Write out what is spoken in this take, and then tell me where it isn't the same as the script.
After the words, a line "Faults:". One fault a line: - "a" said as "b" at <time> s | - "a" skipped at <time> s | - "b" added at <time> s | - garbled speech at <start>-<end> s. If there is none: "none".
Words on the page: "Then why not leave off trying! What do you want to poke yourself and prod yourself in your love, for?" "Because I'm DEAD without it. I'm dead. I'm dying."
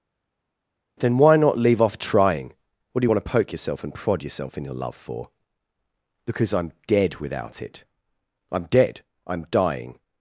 "Then why not leave off trying! What do you want to poke yourself and prod yourself in your love, for?" "Because I'm DEAD without it. I'm dead. I'm dying."
Faults:
none